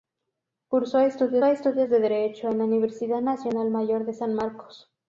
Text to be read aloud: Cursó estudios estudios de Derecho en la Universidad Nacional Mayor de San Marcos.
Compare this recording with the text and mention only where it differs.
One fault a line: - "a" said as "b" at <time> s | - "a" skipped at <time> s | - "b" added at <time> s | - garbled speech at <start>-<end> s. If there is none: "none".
none